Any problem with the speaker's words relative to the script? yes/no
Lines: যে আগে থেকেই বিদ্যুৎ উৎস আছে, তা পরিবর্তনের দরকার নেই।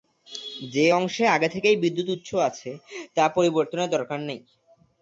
yes